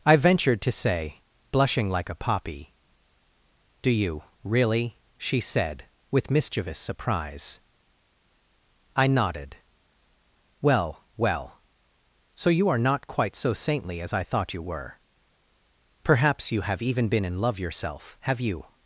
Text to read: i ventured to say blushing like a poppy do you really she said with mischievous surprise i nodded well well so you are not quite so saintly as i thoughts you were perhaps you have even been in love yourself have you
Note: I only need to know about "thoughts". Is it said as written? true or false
false